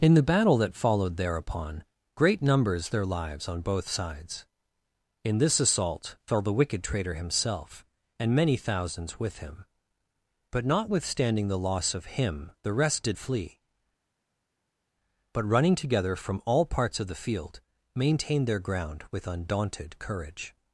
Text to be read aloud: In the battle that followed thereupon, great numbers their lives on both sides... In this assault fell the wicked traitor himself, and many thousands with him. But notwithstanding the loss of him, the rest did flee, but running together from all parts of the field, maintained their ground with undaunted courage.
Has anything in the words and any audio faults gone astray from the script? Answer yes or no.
no